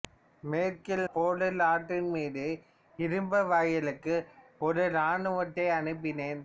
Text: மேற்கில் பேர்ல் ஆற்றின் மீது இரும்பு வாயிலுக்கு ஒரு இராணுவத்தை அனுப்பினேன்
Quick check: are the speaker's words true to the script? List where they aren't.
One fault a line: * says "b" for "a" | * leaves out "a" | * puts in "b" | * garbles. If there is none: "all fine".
all fine